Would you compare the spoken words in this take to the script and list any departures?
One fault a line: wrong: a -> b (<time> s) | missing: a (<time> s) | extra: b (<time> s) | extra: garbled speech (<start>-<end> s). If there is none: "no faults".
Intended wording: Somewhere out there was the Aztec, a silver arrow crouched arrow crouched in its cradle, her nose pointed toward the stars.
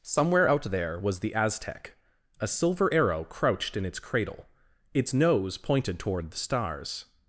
missing: arrow crouched (3.8 s)
wrong: her -> its (4.9 s)